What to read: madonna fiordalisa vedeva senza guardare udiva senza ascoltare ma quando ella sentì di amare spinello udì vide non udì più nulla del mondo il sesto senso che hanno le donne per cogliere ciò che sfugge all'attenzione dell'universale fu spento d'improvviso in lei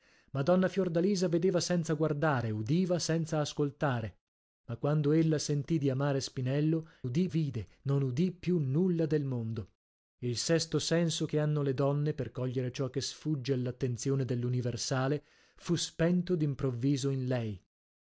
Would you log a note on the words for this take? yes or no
no